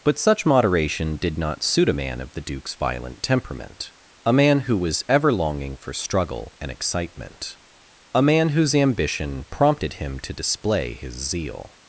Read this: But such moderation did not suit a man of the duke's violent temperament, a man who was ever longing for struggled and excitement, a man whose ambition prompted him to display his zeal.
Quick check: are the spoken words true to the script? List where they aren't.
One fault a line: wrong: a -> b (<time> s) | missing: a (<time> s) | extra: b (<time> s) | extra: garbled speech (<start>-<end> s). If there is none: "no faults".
wrong: struggled -> struggle (5.9 s)